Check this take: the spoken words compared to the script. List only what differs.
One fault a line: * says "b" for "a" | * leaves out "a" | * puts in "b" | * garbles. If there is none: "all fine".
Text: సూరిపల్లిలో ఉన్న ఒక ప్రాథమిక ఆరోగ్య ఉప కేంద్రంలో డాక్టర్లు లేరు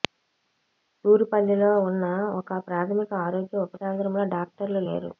all fine